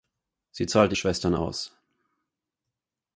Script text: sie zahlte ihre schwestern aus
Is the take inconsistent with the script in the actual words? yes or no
yes